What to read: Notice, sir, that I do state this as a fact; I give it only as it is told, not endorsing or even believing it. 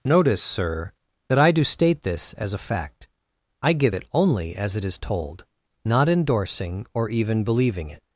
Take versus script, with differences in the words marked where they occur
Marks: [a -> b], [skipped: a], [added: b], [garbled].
Notice, sir, that I do state this as a fact; I give it only as it is told, not endorsing or even believing it.